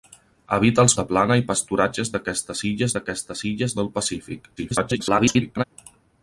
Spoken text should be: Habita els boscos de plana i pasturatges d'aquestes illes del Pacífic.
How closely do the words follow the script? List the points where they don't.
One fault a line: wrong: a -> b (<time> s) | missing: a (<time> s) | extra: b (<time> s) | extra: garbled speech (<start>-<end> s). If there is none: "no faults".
missing: boscos (0.9 s)
extra: d'aquestes illes (3.0 s)
extra: garbled speech (4.6-5.6 s)